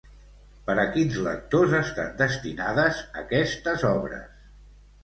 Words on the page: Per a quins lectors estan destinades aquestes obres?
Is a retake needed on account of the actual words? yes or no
no